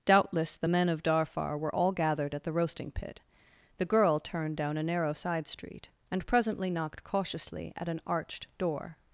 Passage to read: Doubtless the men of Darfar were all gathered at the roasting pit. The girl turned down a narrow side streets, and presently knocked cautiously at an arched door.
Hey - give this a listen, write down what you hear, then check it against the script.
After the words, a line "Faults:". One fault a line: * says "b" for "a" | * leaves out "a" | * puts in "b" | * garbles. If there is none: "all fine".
Doubtless the men of Darfar were all gathered at the roasting pit. The girl turned down a narrow side street, and presently knocked cautiously at an arched door.
Faults:
* says "street" for "streets"